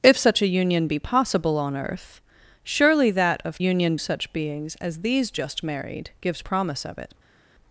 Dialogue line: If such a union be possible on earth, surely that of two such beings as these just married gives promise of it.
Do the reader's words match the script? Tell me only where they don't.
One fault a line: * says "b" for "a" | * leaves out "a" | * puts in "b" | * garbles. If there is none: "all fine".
* says "union" for "two"